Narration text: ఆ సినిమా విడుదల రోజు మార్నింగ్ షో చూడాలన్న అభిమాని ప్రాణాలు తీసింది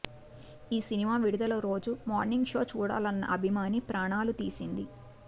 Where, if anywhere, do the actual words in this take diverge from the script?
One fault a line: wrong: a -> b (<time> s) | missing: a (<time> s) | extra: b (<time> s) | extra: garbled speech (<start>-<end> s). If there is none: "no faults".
wrong: ఆ -> ఈ (0.7 s)